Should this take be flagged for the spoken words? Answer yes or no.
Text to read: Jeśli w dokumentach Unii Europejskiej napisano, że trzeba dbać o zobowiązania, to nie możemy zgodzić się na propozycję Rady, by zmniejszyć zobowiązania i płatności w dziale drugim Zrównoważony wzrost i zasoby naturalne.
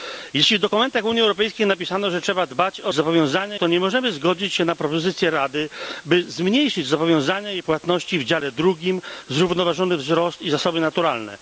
no